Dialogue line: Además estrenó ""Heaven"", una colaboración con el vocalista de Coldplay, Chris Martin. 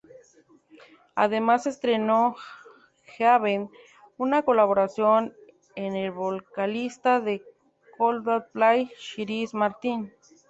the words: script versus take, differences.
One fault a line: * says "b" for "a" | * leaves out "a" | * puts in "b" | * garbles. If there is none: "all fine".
all fine